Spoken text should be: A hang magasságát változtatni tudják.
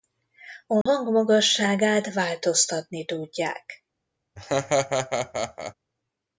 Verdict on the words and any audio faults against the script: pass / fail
fail